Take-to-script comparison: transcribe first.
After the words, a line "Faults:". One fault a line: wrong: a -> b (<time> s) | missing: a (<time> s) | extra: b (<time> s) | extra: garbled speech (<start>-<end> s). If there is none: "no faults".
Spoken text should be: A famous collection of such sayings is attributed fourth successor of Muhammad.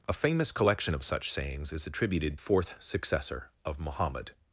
A famous collection of such sayings is attributed fourth successor of Muhammad.
Faults:
no faults